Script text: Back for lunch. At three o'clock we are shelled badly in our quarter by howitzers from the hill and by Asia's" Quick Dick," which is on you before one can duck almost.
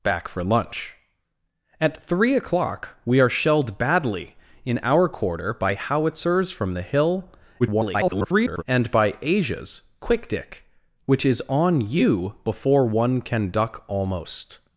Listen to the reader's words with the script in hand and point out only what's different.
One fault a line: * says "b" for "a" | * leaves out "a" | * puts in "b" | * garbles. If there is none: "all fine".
* garbles